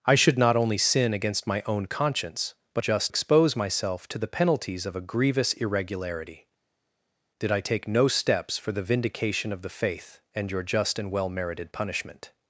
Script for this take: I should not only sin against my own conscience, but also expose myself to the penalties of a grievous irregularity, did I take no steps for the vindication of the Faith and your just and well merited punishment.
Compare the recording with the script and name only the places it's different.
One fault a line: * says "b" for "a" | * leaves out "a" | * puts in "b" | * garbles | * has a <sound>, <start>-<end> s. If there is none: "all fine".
* says "just" for "also"